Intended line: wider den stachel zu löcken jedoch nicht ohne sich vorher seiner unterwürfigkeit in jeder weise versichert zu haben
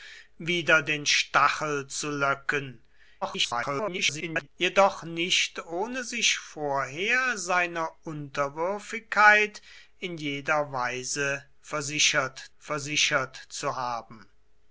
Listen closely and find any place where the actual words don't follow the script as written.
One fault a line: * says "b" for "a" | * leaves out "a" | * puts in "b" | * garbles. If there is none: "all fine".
* garbles
* puts in "versichert"